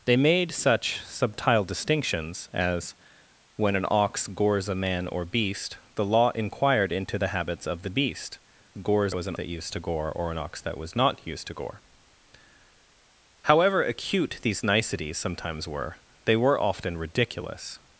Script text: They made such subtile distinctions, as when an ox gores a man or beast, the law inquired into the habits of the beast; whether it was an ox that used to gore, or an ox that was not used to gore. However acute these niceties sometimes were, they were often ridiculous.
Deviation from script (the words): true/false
true